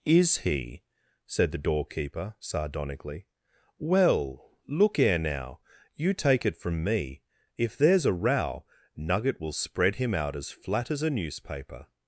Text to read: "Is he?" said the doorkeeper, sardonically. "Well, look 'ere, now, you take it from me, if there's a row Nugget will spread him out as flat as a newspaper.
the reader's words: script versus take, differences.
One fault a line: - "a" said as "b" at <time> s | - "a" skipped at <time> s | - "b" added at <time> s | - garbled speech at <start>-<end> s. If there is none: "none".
none